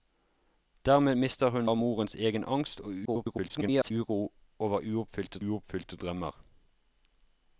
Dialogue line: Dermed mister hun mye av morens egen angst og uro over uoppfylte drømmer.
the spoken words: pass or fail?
fail